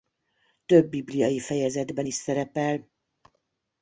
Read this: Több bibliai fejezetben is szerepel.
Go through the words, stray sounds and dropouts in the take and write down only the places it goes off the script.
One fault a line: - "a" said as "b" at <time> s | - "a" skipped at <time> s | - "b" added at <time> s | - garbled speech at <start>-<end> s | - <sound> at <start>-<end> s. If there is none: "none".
none